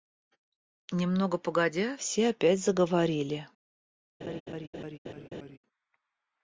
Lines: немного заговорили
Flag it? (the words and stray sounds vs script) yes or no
yes